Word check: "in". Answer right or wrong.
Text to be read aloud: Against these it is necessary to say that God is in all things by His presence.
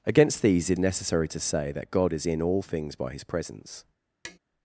right